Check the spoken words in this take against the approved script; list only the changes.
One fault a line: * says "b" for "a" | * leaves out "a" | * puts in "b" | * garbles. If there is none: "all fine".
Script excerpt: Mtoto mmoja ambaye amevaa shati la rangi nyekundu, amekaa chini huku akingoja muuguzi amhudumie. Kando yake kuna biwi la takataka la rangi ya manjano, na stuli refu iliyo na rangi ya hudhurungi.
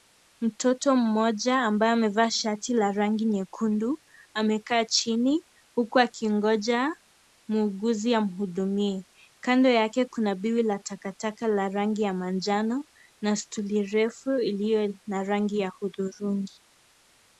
all fine